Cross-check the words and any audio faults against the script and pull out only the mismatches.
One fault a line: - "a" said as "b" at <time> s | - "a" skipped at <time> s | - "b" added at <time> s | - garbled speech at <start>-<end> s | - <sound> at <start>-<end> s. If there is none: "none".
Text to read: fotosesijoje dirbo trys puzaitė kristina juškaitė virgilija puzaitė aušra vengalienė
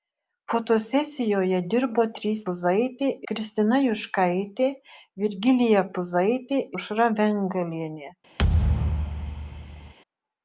- thud at 8.4-9.9 s